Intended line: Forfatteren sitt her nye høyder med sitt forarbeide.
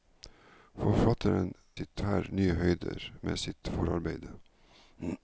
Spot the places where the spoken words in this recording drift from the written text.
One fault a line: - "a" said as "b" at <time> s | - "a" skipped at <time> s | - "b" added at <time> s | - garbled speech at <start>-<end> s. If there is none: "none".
none